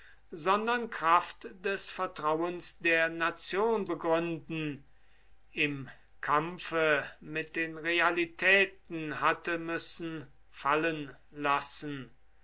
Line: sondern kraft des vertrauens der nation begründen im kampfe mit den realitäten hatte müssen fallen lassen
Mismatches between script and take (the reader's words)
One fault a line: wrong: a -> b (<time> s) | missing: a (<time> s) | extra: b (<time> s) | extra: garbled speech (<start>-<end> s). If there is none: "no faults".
no faults